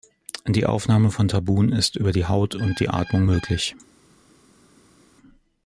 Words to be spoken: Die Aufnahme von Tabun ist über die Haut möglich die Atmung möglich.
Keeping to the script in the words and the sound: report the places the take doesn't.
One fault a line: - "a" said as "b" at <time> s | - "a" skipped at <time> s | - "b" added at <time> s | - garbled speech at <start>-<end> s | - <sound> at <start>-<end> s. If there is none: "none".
- "möglich" said as "und" at 2.5 s